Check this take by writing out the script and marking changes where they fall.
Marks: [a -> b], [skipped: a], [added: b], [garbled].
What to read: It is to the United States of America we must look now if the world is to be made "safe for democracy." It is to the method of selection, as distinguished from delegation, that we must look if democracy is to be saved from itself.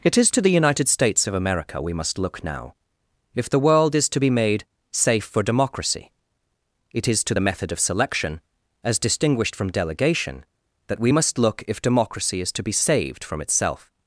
It is to the United States of America we must look now if the world is to be made "safe for democracy." It is to the method of selection, as distinguished from delegation, that we must look if democracy is to be saved from itself.